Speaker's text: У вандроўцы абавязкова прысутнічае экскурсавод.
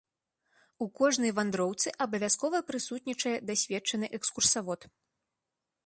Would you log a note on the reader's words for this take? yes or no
yes